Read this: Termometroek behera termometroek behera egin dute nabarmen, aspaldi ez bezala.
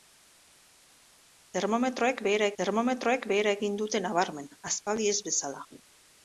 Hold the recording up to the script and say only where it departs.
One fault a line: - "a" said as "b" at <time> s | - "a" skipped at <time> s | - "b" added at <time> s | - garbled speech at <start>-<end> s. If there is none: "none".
none